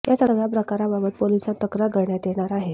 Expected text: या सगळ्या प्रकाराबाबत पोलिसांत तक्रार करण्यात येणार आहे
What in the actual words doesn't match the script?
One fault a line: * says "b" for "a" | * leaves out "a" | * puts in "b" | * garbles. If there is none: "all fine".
all fine